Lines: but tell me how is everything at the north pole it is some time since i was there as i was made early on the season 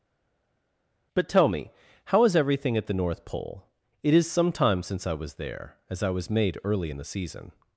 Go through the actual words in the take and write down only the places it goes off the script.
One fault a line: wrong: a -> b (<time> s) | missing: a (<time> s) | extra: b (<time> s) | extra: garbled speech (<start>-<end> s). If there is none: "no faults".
wrong: on -> in (6.9 s)